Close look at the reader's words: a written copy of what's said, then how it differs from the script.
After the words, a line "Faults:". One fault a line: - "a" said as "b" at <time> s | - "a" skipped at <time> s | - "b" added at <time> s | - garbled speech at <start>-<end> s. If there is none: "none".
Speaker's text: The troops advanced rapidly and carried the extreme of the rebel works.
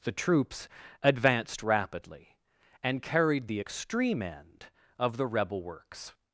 The troops advanced rapidly and carried the extreme end of the rebel works.
Faults:
- "end" added at 4.2 s